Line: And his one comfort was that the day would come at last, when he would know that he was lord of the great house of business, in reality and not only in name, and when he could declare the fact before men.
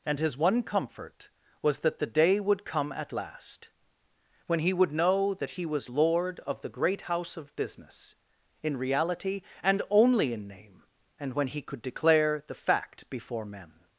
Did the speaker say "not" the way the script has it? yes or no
no